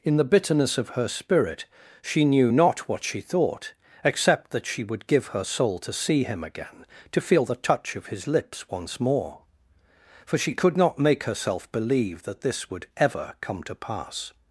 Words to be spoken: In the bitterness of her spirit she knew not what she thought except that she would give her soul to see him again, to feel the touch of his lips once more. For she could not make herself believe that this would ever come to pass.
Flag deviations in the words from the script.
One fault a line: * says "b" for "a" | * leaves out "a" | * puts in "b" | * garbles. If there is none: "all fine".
all fine